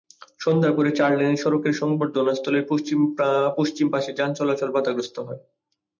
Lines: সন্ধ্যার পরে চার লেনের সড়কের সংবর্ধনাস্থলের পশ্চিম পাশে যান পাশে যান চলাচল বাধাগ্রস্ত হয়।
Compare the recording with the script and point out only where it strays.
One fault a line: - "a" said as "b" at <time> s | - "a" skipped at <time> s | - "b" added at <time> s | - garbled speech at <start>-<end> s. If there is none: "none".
- "পাশে যান" skipped at 4.3 s